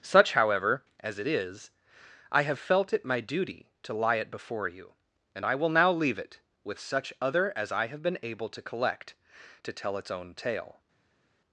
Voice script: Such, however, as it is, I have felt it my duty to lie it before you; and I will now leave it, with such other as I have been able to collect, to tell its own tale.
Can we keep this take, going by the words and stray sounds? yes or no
yes